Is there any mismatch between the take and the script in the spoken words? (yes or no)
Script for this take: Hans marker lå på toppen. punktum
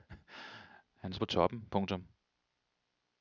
yes